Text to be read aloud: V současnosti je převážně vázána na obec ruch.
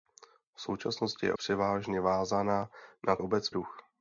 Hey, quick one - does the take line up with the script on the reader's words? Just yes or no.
yes